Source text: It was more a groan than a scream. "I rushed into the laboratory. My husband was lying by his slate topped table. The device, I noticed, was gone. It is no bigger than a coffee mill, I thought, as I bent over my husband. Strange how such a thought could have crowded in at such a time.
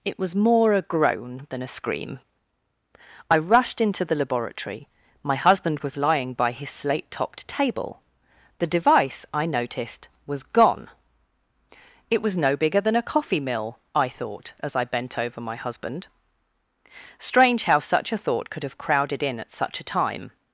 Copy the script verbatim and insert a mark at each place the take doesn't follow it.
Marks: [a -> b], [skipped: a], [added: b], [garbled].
It was more a groan than a scream. "I rushed into the laboratory. My husband was lying by his slate topped table. The device, I noticed, was gone. It [is -> was] no bigger than a coffee mill, I thought, as I bent over my husband. Strange how such a thought could have crowded in at such a time.